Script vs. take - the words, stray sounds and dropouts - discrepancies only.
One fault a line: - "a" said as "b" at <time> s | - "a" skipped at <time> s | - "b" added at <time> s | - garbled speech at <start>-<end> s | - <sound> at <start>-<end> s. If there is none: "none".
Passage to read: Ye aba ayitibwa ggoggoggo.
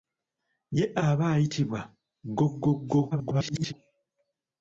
- garbled speech at 3.1-3.7 s